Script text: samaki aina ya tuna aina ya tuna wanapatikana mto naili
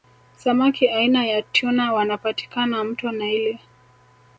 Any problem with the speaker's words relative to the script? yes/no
yes